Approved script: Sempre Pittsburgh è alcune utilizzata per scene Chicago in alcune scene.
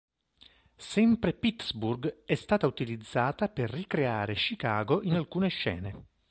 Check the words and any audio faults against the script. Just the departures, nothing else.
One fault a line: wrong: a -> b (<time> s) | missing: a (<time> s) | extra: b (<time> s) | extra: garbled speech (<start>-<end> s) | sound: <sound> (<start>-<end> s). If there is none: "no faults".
wrong: alcune -> stata (2.4 s)
wrong: scene -> ricreare (3.7 s)